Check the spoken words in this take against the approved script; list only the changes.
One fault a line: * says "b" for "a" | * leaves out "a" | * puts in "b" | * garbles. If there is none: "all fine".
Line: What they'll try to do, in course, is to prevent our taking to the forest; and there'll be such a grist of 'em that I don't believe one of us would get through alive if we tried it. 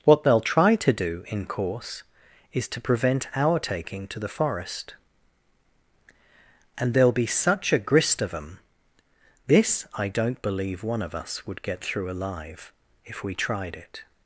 * says "this" for "that"